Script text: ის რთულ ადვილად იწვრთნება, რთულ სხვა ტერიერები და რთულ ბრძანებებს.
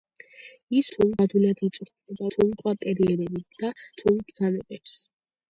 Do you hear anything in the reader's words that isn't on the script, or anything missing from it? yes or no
no